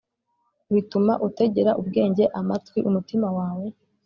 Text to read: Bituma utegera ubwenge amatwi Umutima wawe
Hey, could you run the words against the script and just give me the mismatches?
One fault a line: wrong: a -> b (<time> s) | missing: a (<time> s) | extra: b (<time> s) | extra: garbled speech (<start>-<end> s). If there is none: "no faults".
no faults